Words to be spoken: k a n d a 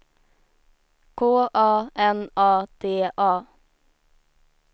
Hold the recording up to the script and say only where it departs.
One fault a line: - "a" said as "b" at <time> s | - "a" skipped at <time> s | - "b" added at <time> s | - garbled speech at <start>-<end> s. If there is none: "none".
- "a" added at 2.4 s